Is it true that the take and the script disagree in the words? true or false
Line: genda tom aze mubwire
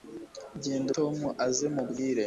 false